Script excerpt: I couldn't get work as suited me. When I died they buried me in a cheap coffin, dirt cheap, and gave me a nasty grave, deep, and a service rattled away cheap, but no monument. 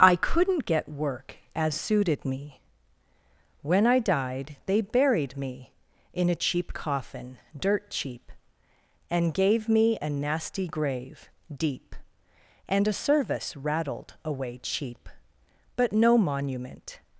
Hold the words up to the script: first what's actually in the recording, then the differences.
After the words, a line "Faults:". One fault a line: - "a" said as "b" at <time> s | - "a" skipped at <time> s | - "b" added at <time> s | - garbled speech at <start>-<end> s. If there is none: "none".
I couldn't get work as suited me. When I died they buried me in a cheap coffin, dirt cheap, and gave me a nasty grave, deep, and a service rattled away cheap, but no monument.
Faults:
none